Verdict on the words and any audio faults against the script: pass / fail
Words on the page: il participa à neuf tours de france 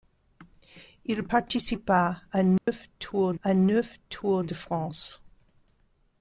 fail